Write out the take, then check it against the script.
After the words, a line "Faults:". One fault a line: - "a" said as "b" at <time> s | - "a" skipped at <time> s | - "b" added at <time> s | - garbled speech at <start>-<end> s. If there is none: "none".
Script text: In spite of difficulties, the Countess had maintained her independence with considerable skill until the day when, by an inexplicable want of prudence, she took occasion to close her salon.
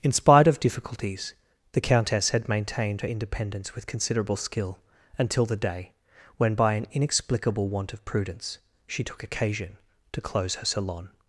In spite of difficulties, the Countess had maintained her independence with considerable skill until the day when, by an inexplicable want of prudence, she took occasion to close her salon.
Faults:
none